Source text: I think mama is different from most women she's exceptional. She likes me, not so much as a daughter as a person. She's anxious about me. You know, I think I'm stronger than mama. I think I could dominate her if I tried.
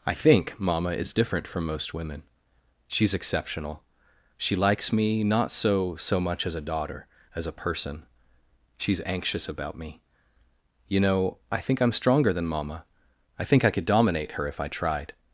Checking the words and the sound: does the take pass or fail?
fail